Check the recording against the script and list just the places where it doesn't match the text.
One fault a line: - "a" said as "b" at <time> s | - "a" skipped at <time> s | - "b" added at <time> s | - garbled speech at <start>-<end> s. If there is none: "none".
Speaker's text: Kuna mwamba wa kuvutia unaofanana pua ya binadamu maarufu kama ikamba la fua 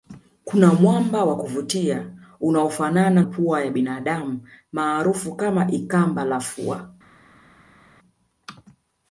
none